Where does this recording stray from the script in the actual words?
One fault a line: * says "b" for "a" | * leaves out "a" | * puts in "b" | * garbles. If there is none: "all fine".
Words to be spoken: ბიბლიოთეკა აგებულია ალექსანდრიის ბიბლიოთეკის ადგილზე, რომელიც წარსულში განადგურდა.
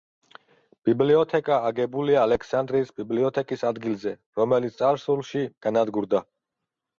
all fine